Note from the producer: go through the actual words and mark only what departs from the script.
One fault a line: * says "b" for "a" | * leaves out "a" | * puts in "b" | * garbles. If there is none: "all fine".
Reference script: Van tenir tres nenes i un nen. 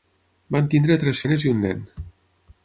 all fine